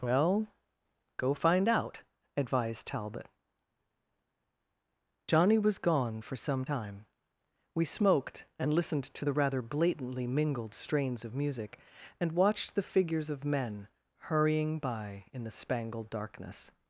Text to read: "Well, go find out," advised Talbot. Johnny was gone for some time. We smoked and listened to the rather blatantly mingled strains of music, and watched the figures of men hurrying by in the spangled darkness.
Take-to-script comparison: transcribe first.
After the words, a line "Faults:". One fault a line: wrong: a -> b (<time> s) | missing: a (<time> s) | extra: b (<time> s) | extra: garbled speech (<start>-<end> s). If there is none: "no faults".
"Well, go find out," advised Talbot. Johnny was gone for some time. We smoked and listened to the rather blatantly mingled strains of music, and watched the figures of men hurrying by in the spangled darkness.
Faults:
no faults